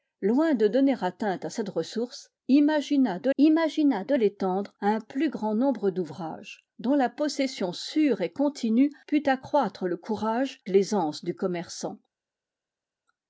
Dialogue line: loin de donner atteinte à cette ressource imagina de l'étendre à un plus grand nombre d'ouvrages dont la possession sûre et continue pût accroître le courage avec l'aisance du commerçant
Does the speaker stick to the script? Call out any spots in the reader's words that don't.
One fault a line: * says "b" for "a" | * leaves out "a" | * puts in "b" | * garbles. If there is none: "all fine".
* puts in "imagina de"
* leaves out "avec"